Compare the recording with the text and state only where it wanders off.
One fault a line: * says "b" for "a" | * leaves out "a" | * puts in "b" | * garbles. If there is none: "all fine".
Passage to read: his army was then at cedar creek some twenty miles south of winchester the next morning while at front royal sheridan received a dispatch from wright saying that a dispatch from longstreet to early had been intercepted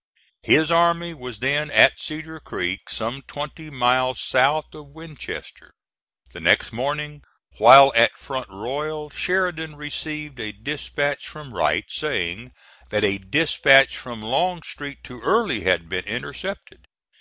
all fine